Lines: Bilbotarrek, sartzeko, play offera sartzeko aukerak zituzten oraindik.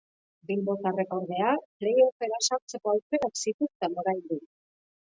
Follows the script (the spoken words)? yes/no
no